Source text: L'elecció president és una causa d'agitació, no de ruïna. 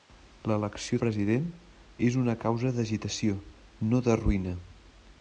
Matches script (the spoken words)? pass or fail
pass